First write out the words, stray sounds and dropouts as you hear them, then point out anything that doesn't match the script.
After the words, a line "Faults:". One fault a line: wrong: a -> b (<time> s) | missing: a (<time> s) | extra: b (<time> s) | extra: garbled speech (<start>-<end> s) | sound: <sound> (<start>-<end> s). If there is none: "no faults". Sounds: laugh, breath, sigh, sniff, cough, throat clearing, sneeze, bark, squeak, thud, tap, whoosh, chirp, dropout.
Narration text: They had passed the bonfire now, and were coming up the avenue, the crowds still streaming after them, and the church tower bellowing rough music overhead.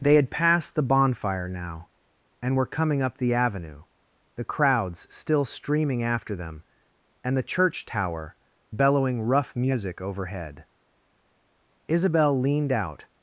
They had passed the bonfire now, and were coming up the avenue, the crowds still streaming after them, and the church tower bellowing rough music overhead. Isabel leaned out
Faults:
extra: Isabel leaned out (11.9 s)